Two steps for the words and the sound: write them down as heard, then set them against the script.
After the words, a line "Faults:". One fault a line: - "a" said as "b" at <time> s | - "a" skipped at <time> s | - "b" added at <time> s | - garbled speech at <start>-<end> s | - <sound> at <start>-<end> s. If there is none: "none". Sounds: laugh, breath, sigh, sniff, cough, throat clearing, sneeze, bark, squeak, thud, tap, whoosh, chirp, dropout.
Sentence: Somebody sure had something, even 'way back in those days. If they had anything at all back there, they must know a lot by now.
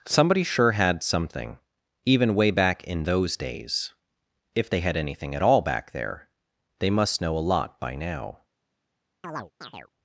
Somebody sure had something, even 'way back in those days. If they had anything at all back there, they must know a lot by now.
Faults:
- chirp at 9.2-9.9 s